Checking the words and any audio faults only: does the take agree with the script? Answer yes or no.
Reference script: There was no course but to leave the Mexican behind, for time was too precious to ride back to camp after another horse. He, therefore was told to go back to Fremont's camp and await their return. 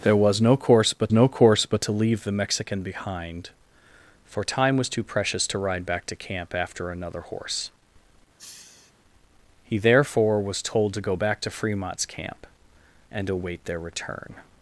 no